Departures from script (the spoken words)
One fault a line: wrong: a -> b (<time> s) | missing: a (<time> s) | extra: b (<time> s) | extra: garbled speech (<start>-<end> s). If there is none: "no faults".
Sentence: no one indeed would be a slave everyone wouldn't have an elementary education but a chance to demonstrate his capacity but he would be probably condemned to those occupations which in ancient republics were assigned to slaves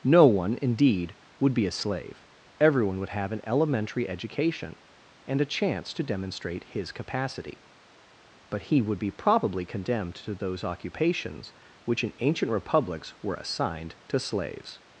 wrong: wouldn't -> would (3.0 s)
wrong: but -> and (5.3 s)